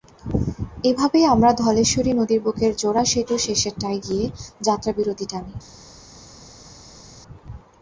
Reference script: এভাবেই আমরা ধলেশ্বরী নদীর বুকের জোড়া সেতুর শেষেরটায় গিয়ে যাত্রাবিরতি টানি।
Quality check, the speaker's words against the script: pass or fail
pass